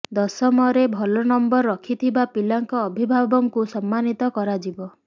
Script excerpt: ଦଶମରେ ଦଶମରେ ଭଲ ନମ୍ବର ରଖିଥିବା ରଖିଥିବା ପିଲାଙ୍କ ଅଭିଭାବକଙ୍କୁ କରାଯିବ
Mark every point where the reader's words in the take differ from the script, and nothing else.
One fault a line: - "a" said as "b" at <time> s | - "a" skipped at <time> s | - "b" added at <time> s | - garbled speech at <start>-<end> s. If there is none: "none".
- "ଦଶମରେ" skipped at 0.8 s
- "ରଖିଥିବା" skipped at 2.2 s
- "ସମ୍ମାନିତ" added at 3.7 s